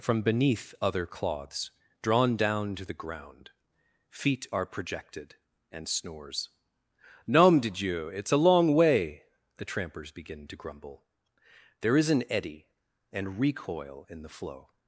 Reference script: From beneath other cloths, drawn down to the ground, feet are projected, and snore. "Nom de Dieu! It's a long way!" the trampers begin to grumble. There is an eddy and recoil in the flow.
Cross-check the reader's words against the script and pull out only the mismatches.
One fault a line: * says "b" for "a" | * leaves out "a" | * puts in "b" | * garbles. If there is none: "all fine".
* says "snores" for "snore"